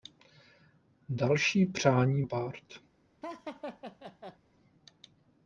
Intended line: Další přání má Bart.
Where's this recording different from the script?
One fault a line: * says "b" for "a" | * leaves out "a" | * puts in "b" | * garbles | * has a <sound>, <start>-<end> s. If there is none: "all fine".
* leaves out "má"
* has a laugh, 3.2-4.4 s